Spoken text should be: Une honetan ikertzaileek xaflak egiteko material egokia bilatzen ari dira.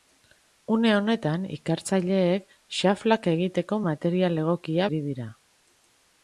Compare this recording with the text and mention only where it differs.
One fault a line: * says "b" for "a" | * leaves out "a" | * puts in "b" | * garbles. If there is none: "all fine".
* leaves out "bilatzen"